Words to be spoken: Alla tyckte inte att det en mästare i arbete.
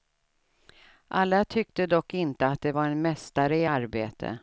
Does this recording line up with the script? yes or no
no